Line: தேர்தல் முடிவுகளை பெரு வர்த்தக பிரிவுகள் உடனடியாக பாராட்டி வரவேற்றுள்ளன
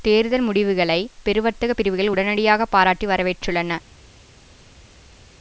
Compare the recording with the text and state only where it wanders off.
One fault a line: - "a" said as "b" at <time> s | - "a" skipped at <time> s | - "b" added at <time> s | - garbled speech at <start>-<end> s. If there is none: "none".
none